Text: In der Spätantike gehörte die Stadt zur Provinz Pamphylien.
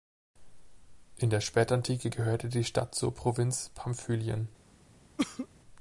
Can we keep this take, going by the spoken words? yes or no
yes